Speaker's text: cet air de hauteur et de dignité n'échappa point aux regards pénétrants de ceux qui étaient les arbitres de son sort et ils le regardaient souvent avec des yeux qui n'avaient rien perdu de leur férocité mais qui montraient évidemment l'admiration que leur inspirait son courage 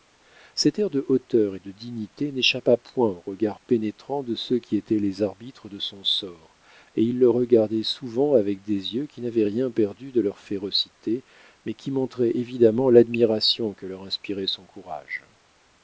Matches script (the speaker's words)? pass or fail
pass